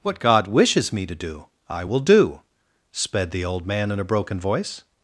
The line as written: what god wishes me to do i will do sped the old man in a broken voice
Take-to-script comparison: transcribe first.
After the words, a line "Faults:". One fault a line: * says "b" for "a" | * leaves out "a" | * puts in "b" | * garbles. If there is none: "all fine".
what god wishes me to do i will do sped the old man in a broken voice
Faults:
all fine